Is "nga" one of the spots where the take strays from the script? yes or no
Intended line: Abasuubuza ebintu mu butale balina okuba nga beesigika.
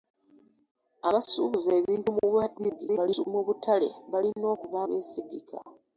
yes